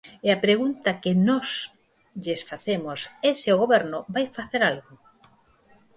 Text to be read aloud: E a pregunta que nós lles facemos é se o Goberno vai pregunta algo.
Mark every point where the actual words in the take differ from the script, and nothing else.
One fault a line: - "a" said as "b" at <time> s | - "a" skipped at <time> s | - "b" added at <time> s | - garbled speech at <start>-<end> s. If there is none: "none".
- "pregunta" said as "facer" at 4.4 s